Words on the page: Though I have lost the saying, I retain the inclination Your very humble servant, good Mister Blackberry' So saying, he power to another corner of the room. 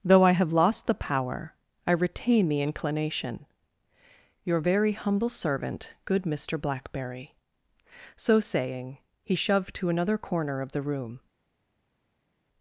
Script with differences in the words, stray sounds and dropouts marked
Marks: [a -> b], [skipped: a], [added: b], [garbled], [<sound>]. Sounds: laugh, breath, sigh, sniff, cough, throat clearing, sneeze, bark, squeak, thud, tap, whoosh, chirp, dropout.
Though I have lost the [saying, -> power] I retain the inclination Your very humble servant, good Mister Blackberry' So saying, he [power -> shoved] to another corner of the room.